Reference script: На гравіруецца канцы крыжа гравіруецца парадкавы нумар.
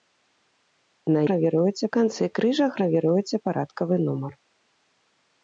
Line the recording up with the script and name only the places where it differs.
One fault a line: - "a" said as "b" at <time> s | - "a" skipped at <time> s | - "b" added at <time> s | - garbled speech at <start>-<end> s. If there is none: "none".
none